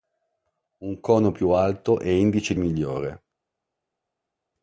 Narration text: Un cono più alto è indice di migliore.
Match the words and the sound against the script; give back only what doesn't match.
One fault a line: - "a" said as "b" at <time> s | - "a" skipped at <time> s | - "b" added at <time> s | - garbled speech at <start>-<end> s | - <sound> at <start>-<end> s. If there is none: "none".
none